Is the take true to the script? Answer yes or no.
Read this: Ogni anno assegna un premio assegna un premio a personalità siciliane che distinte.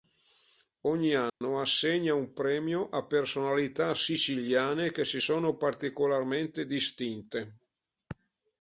no